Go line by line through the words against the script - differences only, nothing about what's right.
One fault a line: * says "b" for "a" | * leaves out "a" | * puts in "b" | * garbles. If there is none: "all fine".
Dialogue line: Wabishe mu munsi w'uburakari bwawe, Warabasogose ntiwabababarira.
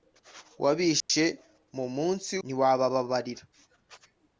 * leaves out "w'uburakari bwawe Warabasogose"